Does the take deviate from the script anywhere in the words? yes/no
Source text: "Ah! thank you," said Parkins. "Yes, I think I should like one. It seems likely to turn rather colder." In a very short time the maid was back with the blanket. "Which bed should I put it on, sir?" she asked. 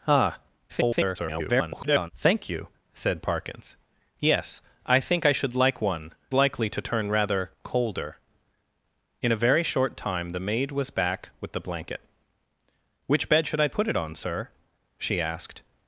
yes